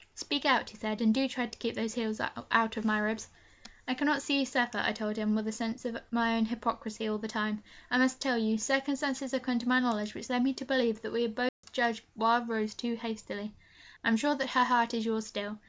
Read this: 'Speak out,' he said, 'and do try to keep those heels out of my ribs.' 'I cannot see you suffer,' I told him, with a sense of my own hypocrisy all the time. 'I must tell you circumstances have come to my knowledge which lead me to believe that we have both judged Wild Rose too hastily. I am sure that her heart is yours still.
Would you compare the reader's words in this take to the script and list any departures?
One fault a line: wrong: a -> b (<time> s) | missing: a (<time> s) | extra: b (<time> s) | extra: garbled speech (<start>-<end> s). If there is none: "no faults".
no faults